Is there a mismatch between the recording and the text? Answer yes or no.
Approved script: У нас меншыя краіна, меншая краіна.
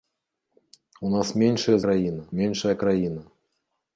no